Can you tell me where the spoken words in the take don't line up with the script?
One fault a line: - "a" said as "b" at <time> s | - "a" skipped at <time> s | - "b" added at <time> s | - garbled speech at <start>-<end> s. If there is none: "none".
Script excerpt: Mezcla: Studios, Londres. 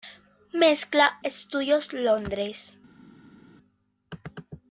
none